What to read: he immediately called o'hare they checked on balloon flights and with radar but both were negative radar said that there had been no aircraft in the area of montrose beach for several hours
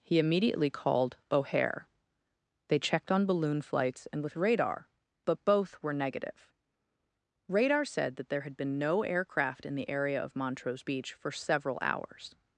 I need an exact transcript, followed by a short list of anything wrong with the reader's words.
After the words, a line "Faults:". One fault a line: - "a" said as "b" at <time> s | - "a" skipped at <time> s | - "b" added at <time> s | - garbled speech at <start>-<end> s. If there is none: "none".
he immediately called o'hare they checked on balloon flights and with radar but both were negative radar said that there had been no aircraft in the area of montrose beach for several hours
Faults:
none